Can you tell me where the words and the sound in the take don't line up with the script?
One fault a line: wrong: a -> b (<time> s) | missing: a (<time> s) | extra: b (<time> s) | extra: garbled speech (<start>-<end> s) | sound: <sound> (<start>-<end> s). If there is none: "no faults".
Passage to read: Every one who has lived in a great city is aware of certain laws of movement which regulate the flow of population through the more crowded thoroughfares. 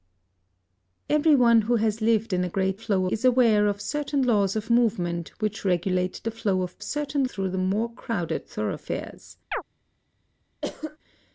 wrong: city -> flow (2.7 s)
wrong: population -> certain (6.8 s)
sound: chirp (9.5-9.6 s)
sound: cough (10.6-11.0 s)